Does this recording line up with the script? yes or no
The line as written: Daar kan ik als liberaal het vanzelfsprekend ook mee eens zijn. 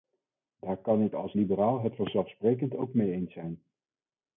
yes